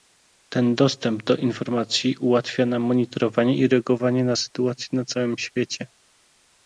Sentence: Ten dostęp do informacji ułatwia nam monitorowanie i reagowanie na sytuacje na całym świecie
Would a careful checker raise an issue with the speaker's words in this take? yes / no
no